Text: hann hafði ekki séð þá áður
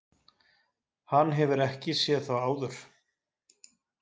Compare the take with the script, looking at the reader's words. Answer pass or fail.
fail